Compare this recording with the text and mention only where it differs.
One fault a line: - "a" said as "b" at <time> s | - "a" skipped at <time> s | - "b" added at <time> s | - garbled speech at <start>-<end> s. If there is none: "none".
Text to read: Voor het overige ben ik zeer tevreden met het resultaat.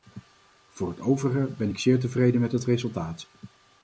none